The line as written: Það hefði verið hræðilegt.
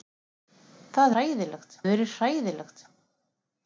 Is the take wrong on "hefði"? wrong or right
wrong